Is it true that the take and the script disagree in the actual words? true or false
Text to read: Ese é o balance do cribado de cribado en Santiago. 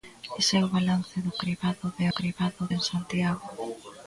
false